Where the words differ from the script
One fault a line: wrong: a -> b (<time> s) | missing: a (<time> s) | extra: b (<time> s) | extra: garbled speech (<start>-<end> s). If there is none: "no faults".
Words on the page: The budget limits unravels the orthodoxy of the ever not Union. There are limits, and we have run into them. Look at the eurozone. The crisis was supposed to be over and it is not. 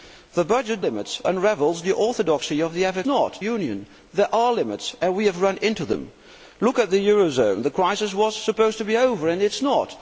no faults